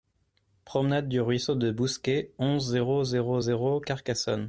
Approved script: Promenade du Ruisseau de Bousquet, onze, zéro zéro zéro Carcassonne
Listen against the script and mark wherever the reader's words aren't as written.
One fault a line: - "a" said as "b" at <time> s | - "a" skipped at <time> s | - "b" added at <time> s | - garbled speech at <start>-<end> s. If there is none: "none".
none